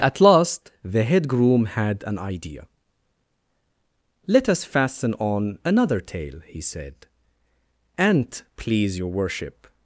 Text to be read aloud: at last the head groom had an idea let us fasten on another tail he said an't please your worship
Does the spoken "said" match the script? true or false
true